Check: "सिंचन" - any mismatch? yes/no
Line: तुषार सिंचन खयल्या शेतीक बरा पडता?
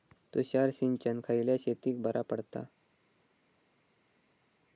no